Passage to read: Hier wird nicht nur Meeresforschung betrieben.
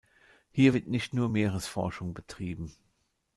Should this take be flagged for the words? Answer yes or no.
no